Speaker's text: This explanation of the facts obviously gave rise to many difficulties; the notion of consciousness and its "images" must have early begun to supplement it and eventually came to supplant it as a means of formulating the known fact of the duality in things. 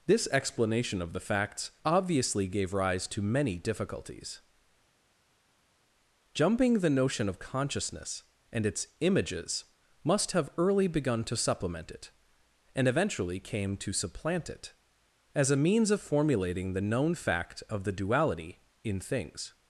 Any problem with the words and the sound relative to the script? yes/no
yes